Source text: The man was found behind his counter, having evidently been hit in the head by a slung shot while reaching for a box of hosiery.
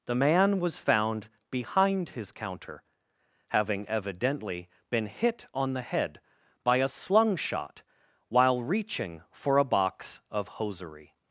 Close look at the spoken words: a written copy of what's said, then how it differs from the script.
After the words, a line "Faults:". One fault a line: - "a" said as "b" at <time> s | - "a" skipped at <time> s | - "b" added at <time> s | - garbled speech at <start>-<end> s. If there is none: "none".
The man was found behind his counter, having evidently been hit on the head by a slung shot while reaching for a box of hosiery.
Faults:
- "in" said as "on" at 5.5 s